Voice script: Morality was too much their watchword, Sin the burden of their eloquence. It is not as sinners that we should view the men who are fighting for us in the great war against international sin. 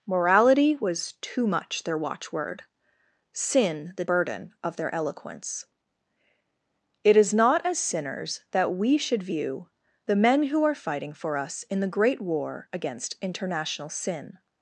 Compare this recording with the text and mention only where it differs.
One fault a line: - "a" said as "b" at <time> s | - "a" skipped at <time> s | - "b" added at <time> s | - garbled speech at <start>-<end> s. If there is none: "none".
none